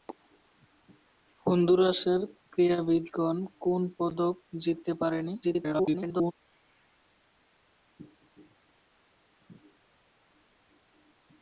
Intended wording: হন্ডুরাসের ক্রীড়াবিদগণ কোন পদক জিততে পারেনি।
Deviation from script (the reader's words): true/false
true